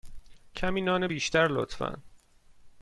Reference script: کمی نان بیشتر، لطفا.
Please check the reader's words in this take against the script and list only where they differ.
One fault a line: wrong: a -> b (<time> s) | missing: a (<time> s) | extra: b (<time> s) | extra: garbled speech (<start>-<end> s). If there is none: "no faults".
no faults